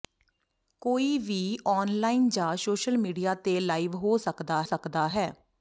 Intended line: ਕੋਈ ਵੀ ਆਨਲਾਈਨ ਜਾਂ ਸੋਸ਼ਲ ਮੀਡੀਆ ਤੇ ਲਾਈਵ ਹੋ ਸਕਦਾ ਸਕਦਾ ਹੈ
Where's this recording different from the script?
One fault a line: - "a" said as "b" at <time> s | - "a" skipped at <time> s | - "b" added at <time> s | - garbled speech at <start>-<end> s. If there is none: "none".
none